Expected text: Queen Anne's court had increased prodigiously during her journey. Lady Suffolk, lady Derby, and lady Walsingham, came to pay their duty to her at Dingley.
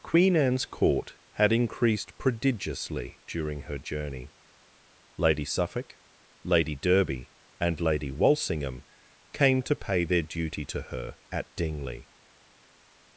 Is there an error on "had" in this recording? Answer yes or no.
no